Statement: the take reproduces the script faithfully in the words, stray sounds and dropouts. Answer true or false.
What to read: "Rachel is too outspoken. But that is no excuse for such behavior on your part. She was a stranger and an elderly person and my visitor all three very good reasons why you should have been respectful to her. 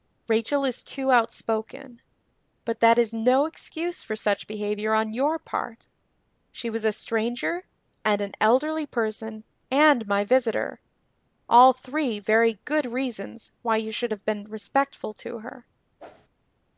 false